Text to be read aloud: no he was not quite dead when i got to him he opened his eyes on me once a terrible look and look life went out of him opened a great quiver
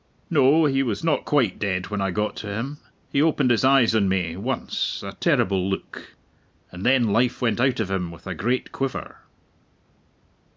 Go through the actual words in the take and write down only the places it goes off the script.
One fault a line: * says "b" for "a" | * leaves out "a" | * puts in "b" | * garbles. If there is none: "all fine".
* says "then" for "look"
* says "with" for "opened"